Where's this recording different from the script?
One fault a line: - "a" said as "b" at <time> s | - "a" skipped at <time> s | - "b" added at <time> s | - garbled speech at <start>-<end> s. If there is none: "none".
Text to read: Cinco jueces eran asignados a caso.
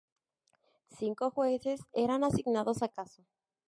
none